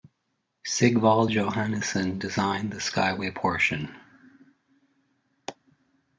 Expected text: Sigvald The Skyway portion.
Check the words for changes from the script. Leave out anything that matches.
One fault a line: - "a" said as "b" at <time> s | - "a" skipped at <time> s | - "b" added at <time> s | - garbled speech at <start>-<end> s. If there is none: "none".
- "Johannesson designed" added at 1.3 s